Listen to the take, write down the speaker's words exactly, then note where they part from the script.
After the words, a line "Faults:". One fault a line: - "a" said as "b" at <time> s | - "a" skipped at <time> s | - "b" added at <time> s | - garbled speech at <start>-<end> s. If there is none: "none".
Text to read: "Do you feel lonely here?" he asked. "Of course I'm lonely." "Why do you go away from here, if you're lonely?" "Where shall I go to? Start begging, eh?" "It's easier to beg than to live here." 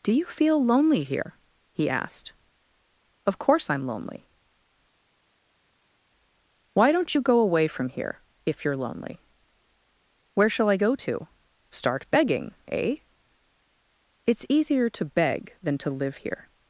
"Do you feel lonely here?" he asked. "Of course I'm lonely." "Why don't you go away from here, if you're lonely?" "Where shall I go to? Start begging, eh?" "It's easier to beg than to live here."
Faults:
- "do" said as "don't" at 6.9 s